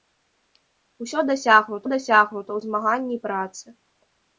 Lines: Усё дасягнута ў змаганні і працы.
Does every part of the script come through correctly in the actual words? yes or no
no